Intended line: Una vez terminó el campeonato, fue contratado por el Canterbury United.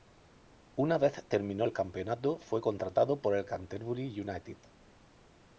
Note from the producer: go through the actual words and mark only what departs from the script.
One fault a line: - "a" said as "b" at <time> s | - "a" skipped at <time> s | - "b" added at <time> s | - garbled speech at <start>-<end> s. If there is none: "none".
none